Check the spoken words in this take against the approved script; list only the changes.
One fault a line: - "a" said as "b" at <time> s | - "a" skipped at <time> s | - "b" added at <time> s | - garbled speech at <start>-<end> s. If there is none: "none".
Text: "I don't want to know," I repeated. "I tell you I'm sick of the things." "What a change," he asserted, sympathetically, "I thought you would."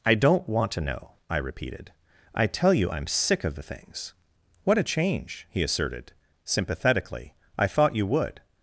none